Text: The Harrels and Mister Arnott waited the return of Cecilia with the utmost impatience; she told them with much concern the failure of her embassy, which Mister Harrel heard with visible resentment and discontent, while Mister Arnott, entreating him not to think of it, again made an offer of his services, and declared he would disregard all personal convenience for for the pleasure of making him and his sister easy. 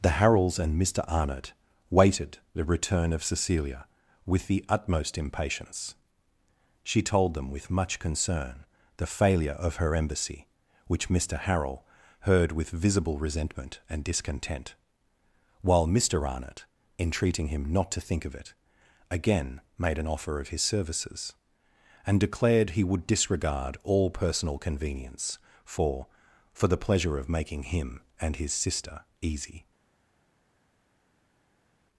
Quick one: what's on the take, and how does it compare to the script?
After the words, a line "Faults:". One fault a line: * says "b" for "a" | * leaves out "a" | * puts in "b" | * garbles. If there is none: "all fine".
The Harrels and Mister Arnott waited the return of Cecilia with the utmost impatience; she told them with much concern the failure of her embassy, which Mister Harrel heard with visible resentment and discontent, while Mister Arnott, entreating him not to think of it, again made an offer of his services, and declared he would disregard all personal convenience for for the pleasure of making him and his sister easy.
Faults:
all fine